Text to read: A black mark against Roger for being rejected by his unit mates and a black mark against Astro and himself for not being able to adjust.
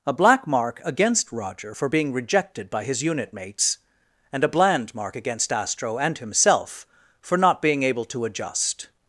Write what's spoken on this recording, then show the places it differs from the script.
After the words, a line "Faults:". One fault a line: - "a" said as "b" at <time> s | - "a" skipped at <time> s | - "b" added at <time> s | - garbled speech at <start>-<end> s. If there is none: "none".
A black mark against Roger for being rejected by his unit mates and a bland mark against Astro and himself for not being able to adjust.
Faults:
- "black" said as "bland" at 4.5 s